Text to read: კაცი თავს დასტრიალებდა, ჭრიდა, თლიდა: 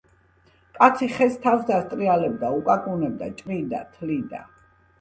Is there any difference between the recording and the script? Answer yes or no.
yes